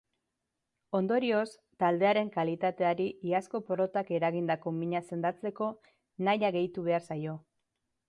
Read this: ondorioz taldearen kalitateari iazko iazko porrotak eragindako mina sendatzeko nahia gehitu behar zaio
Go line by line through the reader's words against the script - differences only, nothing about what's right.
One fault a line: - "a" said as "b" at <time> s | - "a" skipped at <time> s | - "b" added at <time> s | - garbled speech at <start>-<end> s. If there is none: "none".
- "iazko" skipped at 3.6 s